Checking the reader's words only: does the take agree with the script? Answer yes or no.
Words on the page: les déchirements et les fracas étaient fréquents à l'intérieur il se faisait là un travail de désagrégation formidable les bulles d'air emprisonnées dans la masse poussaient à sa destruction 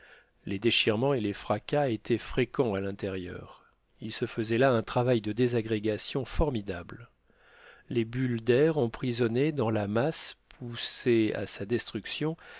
yes